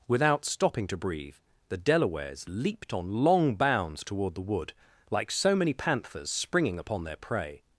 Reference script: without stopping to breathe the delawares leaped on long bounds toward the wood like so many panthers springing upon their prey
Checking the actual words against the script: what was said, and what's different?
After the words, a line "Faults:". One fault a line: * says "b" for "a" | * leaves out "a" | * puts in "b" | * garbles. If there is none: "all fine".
without stopping to breathe the delawares leaped on long bounds toward the wood like so many panthers springing upon their prey
Faults:
all fine